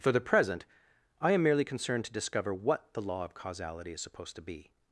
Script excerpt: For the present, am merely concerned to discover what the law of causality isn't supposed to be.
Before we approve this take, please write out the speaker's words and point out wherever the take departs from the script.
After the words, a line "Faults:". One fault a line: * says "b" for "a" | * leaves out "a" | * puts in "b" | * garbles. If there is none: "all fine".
For the present, I am merely concerned to discover what the law of causality is supposed to be.
Faults:
* puts in "I"
* says "is" for "isn't"